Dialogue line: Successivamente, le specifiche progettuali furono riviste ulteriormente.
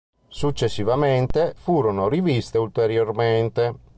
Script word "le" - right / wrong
wrong